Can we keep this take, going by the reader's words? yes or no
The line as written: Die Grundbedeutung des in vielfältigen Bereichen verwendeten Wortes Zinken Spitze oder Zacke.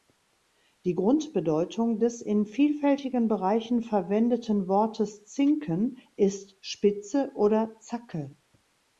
no